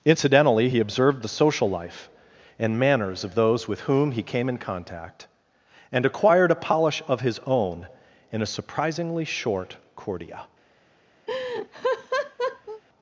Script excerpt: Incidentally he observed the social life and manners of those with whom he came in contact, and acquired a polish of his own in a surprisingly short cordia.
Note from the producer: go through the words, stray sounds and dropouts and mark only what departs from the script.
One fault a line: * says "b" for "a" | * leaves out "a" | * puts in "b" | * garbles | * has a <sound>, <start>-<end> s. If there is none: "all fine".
* has a laugh, 11.3-12.8 s